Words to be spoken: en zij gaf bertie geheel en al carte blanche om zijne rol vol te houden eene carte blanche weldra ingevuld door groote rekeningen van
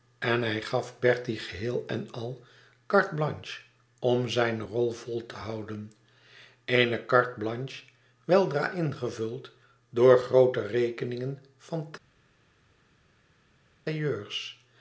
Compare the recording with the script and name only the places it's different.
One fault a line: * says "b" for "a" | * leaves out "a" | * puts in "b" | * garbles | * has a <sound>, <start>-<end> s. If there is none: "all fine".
* says "hij" for "zij"